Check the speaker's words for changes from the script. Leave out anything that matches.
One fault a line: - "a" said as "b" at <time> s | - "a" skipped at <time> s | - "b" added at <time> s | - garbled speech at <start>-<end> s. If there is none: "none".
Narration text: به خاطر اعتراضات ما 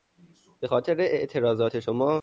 - "ما" said as "شما" at 1.8 s